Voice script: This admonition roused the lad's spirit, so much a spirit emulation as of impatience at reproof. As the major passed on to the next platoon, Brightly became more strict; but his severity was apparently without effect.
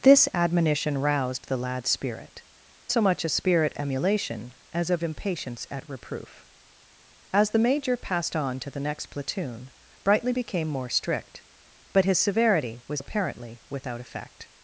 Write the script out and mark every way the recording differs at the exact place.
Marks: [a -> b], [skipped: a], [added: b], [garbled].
This admonition roused the lad's spirit, so much a spirit emulation as of impatience at reproof. As the major passed on to the next platoon, Brightly became more strict; but his severity was apparently without effect.